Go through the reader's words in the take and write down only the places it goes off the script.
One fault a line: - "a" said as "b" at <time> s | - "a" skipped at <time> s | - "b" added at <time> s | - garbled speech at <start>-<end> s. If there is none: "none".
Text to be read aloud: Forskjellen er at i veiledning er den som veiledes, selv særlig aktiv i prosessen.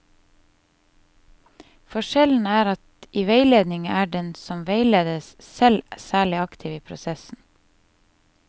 none